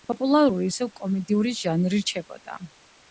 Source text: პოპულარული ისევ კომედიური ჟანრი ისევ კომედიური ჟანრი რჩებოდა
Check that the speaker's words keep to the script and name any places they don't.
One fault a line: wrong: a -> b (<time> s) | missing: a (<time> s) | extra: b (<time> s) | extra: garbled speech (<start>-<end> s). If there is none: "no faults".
missing: ისევ კომედიური ჟანრი (2.0 s)